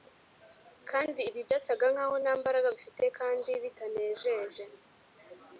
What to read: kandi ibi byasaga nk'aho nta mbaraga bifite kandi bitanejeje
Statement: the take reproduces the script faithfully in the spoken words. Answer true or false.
true